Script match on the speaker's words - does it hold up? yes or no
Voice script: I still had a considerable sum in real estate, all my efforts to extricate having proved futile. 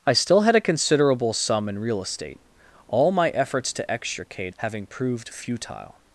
yes